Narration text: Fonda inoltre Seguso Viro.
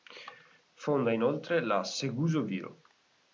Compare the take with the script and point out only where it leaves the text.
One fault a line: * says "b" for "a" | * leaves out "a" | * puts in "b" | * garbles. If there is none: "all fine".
* puts in "la"